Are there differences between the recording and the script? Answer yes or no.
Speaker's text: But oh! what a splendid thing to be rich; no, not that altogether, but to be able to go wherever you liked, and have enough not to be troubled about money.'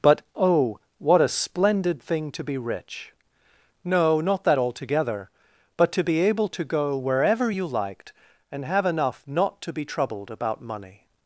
no